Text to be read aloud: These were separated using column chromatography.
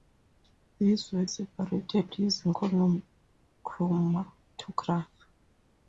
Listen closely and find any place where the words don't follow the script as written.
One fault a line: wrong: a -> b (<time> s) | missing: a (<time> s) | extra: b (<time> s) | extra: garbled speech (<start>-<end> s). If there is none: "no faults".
no faults